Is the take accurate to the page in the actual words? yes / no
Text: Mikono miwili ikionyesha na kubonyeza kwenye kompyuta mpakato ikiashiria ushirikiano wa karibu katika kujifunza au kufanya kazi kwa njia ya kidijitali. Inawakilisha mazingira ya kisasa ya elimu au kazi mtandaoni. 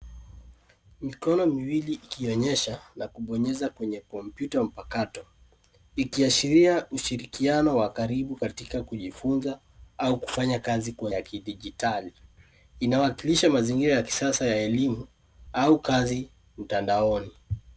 no